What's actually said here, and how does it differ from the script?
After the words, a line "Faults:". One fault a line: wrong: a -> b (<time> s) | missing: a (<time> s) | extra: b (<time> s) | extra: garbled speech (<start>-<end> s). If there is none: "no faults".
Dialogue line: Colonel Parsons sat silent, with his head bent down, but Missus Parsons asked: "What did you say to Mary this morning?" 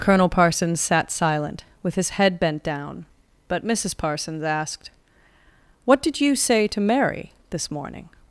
Colonel Parsons sat silent, with his head bent down, but Missus Parsons asked: "What did you say to Mary this morning?"
Faults:
no faults